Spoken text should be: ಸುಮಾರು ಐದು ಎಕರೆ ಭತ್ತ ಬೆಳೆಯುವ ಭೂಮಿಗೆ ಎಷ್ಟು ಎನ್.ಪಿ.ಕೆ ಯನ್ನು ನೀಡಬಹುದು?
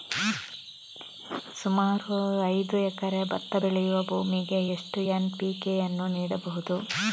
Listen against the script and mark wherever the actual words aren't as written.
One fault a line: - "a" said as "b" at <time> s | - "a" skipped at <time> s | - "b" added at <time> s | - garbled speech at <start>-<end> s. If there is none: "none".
none